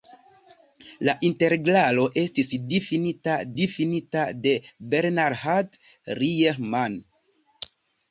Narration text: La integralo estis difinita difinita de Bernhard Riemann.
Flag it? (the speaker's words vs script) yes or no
no